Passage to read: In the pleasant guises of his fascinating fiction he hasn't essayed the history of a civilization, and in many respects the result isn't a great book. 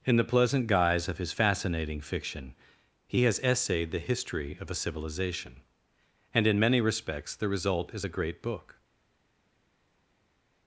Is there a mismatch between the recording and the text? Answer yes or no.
yes